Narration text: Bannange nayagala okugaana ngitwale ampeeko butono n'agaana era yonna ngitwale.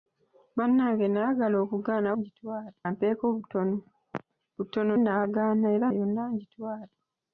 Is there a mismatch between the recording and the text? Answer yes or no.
no